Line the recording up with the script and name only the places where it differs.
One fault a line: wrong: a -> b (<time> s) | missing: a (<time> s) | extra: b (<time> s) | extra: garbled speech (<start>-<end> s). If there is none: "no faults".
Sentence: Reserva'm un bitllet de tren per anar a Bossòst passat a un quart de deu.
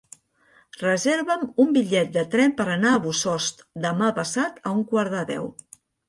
extra: demà (3.9 s)